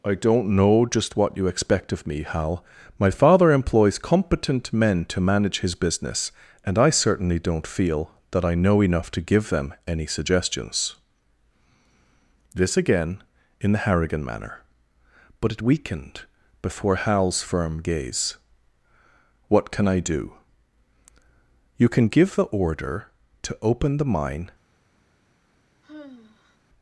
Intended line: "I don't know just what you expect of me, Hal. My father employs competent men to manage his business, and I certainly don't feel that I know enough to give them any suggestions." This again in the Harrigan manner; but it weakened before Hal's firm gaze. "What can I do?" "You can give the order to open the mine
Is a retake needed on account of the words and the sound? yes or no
yes